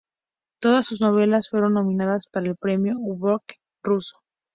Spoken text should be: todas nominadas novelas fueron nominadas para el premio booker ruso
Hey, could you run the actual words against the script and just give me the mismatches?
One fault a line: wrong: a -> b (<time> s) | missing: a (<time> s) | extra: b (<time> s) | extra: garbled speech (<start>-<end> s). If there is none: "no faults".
wrong: nominadas -> sus (0.9 s)